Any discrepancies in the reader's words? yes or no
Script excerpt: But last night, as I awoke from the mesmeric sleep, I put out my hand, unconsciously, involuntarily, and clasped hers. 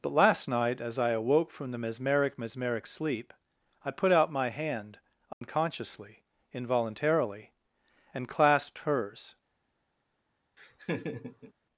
yes